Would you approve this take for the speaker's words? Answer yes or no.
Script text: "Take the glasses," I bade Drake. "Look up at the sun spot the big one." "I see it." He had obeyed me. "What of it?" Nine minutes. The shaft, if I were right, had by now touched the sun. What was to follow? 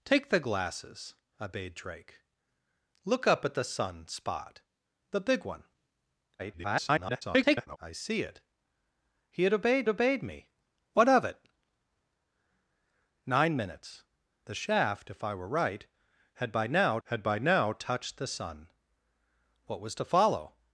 no